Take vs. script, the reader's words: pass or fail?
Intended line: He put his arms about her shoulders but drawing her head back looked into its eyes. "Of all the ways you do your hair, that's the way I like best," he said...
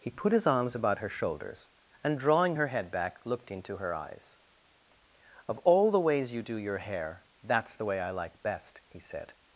fail